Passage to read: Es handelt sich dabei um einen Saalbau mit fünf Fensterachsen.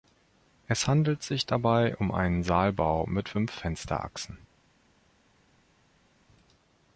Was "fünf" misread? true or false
false